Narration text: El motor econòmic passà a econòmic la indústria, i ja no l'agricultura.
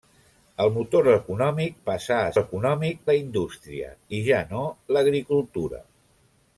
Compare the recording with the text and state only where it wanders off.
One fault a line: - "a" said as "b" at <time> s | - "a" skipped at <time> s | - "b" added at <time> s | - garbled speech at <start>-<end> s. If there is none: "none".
none